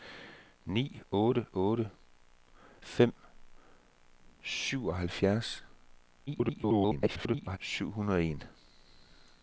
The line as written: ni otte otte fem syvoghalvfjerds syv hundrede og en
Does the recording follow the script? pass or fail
fail